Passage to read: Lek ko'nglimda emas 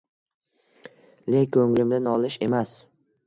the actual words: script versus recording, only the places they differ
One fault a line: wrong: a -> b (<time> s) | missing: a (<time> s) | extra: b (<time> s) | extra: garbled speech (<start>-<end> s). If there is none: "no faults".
extra: nolish (2.0 s)